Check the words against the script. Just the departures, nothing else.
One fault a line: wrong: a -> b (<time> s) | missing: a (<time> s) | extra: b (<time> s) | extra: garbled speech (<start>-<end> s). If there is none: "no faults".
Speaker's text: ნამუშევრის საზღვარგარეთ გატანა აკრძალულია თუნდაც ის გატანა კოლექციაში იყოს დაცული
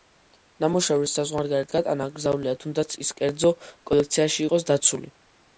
wrong: გატანა -> კერძო (3.2 s)